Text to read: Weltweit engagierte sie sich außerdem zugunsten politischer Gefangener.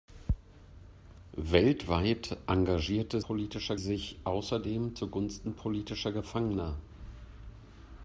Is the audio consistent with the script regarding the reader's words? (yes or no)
no